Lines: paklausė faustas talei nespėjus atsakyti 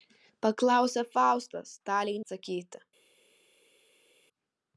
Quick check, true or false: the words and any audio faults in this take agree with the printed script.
false